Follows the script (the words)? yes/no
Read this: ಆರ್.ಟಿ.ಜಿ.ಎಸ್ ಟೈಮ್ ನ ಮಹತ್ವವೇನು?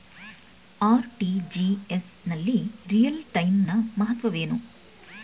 no